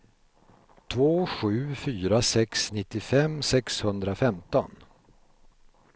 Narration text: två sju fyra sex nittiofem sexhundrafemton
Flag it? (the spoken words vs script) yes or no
no